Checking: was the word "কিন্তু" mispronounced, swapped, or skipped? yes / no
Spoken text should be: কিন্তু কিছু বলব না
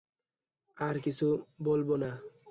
yes